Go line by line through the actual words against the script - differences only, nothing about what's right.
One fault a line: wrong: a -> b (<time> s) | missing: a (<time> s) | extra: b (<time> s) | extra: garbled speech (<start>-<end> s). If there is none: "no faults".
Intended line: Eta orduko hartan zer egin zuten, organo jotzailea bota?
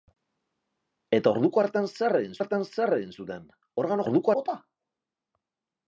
extra: hartan zer egin (2.4 s)
wrong: jotzailea -> orduko (4.1 s)